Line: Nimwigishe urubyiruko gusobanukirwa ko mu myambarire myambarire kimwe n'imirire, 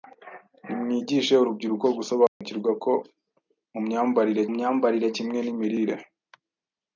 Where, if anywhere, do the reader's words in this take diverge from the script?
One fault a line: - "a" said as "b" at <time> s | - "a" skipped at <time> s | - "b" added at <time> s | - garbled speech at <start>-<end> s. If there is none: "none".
none